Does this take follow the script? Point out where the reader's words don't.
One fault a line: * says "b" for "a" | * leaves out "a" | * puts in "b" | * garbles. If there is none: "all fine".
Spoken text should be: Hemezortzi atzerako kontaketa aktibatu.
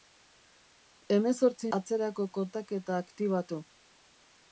all fine